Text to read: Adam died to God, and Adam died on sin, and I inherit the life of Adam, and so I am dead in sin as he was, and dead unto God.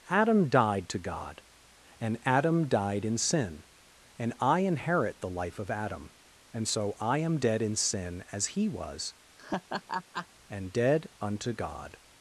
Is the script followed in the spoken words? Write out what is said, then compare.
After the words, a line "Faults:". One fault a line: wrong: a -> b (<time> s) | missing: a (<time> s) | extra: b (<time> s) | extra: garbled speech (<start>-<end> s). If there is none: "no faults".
Adam died to God, and Adam died in sin, and I inherit the life of Adam, and so I am dead in sin as he was, and dead unto God.
Faults:
wrong: on -> in (3.0 s)